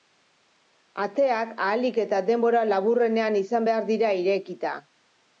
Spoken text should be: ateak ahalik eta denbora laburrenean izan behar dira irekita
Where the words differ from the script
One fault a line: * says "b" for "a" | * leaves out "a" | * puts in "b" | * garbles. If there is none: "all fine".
all fine